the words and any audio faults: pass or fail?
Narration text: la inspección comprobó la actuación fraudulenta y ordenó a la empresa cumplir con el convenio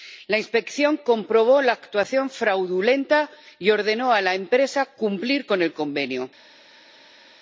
pass